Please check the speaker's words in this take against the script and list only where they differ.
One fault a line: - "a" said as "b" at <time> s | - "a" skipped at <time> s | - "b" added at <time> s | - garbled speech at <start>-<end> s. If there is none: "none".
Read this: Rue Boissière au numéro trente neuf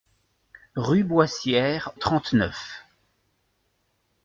- "au numéro" skipped at 1.9 s